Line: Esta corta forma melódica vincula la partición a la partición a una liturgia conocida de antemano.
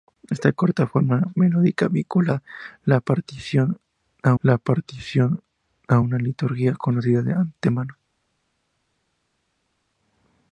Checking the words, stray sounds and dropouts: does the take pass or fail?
pass